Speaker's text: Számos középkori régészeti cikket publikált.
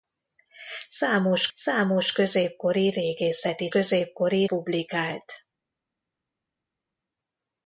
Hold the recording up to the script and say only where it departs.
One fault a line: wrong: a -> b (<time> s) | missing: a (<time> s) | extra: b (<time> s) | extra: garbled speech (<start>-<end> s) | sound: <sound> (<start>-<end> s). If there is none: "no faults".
extra: számos (1.5 s)
wrong: cikket -> középkori (3.7 s)